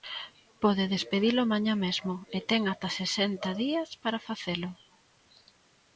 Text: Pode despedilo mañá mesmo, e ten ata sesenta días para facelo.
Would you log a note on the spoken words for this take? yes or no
no